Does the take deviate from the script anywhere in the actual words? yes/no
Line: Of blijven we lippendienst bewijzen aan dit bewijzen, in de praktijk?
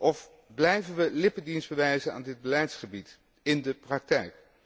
yes